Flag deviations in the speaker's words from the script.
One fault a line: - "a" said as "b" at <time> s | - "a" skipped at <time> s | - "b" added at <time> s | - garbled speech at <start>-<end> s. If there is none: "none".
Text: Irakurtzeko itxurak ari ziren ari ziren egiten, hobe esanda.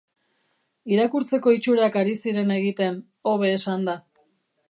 - "ari ziren" skipped at 2.5 s